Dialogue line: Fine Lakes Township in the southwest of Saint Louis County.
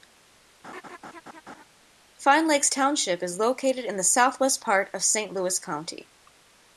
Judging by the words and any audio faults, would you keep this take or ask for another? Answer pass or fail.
fail